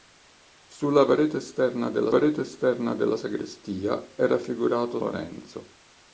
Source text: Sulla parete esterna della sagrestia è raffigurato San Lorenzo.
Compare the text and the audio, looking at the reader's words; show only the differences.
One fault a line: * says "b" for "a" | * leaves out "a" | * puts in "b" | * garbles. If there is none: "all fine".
* puts in "parete esterna della"
* leaves out "San"